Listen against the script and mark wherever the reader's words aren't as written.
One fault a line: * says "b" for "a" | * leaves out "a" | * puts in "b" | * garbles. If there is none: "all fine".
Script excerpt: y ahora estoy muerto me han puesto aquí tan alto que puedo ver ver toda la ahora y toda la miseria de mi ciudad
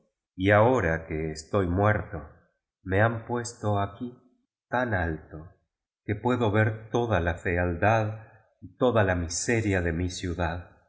* puts in "que"
* leaves out "ver"
* says "fealdad" for "ahora"